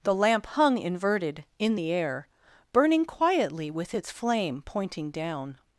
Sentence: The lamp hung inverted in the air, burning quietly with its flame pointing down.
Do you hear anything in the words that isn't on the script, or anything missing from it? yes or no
no